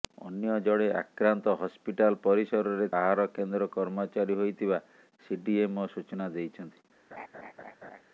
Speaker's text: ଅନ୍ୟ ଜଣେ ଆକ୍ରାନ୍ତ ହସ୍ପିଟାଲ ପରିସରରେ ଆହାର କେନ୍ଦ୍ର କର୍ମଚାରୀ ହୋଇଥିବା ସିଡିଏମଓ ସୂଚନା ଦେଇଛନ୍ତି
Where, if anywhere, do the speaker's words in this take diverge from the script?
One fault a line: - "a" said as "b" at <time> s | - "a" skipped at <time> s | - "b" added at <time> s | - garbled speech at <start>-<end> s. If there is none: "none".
none